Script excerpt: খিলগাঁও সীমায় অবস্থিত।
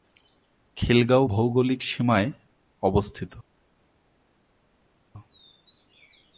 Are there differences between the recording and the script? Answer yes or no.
yes